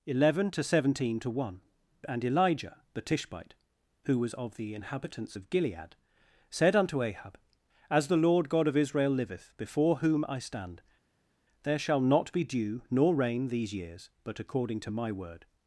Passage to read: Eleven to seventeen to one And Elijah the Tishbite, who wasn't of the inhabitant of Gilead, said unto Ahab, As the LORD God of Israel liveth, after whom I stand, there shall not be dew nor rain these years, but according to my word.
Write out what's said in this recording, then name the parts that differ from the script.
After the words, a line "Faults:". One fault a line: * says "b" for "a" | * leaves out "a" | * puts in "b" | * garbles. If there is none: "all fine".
Eleven to seventeen to one And Elijah the Tishbite, who was of the inhabitants of Gilead, said unto Ahab, As the LORD God of Israel liveth, before whom I stand, there shall not be dew nor rain these years, but according to my word.
Faults:
* says "was" for "wasn't"
* says "inhabitants" for "inhabitant"
* says "before" for "after"